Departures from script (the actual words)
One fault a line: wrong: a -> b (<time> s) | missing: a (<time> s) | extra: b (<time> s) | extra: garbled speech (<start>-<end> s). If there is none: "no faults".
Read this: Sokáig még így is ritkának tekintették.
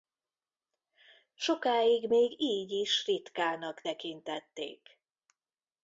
no faults